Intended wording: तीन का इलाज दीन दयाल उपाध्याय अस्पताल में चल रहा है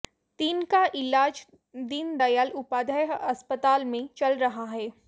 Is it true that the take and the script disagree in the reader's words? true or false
false